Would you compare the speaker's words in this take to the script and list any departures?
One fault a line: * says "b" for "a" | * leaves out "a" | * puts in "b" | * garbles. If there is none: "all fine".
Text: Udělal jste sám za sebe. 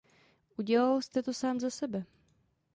* puts in "to"